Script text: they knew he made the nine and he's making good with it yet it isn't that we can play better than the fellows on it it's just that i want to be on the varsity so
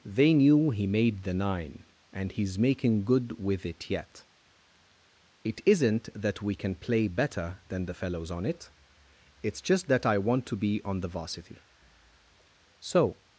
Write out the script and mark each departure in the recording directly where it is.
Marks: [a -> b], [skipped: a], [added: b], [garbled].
they knew he made the nine and he's making good with it yet it isn't that we can play better than the fellows on it it's just that i want to be on the varsity so